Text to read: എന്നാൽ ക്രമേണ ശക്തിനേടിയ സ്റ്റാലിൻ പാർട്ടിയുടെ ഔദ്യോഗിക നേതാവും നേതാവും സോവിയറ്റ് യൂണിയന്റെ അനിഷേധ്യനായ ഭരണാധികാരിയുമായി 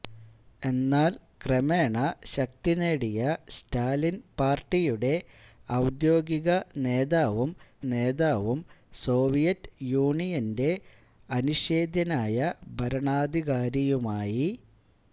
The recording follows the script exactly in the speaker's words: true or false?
true